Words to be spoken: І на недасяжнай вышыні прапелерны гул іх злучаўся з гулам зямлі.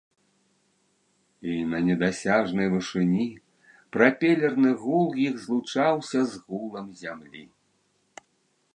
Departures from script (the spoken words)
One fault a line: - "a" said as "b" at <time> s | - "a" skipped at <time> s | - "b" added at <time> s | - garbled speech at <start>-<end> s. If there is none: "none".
none